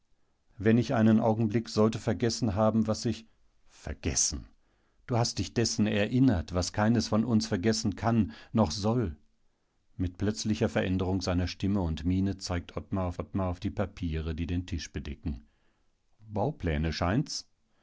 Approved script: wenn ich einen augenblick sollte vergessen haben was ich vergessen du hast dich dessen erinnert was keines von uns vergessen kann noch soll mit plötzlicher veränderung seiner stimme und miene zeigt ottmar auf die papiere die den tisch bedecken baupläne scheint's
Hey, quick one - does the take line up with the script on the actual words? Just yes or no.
no